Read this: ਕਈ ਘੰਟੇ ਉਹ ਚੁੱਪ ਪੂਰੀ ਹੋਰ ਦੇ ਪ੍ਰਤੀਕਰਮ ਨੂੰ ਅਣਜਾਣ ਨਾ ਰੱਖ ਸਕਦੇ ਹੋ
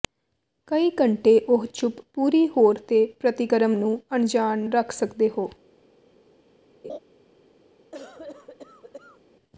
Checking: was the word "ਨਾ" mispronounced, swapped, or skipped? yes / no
yes